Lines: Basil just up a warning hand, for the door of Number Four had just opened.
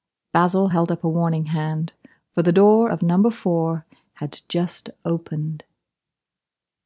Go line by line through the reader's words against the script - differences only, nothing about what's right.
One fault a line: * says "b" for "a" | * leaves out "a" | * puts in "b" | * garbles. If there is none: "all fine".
* says "held" for "just"